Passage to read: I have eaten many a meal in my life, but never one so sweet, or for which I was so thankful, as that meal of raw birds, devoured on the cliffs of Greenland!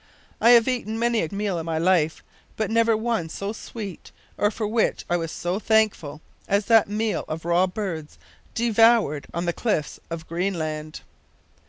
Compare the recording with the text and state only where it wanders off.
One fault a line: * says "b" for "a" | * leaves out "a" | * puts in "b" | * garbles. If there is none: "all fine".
all fine